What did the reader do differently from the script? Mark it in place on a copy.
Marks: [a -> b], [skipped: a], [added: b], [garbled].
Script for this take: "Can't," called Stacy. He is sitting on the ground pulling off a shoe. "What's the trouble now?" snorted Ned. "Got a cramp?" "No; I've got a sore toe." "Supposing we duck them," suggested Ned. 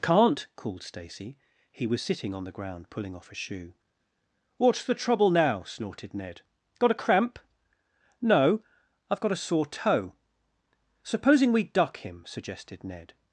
"Can't," called Stacy. He [is -> was] sitting on the ground pulling off a shoe. "What's the trouble now?" snorted Ned. "Got a cramp?" "No; I've got a sore toe." "Supposing we duck [them," -> him] suggested Ned.